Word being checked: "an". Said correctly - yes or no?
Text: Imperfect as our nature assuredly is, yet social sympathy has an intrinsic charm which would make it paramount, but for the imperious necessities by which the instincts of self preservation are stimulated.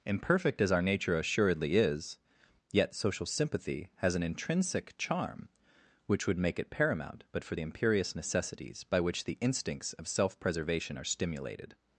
yes